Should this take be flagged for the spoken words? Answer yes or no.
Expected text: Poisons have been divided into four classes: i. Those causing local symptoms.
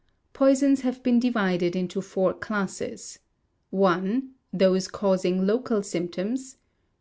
no